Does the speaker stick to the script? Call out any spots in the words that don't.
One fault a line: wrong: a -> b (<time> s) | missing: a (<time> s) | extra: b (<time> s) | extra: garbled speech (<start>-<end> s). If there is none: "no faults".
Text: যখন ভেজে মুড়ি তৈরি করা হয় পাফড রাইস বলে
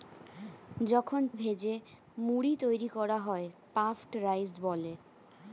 no faults